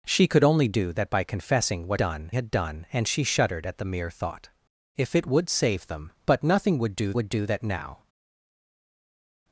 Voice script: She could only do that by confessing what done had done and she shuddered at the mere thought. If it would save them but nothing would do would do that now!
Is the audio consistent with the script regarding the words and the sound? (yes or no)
yes